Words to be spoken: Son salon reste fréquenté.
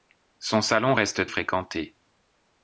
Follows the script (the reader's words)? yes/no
yes